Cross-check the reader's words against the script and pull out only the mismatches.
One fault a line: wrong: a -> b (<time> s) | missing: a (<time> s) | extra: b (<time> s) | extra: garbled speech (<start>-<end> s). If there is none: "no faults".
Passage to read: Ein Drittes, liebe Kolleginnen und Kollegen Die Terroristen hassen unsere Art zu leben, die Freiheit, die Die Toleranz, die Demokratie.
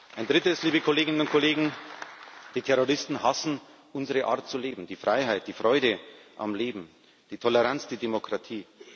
extra: Freude am Leben (5.5 s)